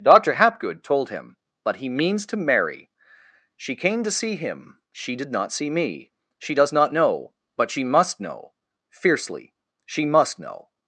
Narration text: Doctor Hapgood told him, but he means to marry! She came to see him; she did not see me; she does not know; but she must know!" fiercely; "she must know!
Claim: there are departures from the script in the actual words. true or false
false